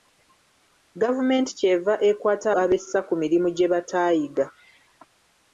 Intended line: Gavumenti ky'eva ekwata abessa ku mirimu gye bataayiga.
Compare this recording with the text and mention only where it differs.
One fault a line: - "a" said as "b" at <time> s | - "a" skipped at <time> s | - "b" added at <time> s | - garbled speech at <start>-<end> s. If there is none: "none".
none